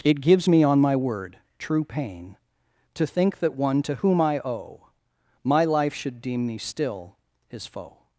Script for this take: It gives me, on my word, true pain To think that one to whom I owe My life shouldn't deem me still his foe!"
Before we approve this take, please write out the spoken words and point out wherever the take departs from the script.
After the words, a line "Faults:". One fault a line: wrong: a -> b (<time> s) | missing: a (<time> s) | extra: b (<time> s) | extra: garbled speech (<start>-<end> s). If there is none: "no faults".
It gives me, on my word, true pain To think that one to whom I owe My life should deem me still his foe!"
Faults:
wrong: shouldn't -> should (5.9 s)